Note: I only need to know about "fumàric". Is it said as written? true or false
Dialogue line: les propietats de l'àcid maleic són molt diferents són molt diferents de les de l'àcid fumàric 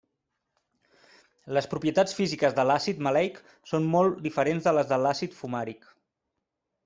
true